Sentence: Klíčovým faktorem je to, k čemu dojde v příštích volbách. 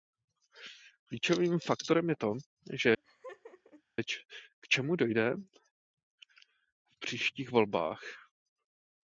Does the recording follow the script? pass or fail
pass